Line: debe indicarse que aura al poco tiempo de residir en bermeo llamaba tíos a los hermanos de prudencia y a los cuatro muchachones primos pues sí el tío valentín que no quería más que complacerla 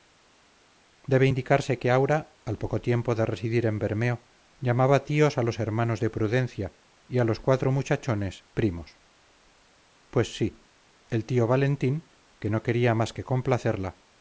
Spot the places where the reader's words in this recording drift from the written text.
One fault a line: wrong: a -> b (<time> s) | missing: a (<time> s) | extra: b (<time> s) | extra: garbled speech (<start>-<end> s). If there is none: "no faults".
no faults